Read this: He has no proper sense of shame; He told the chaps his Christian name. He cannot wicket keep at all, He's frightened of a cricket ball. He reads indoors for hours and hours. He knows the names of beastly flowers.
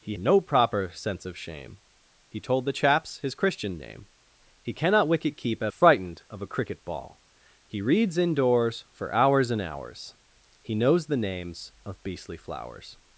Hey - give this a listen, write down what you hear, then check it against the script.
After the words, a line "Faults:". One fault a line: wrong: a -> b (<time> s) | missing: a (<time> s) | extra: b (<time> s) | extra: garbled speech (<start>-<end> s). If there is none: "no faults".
He no proper sense of shame; He told the chaps his Christian name. He cannot wicket keep at frightened of a cricket ball. He reads indoors for hours and hours. He knows the names of beastly flowers.
Faults:
missing: has (0.1 s)
missing: all He's (5.7 s)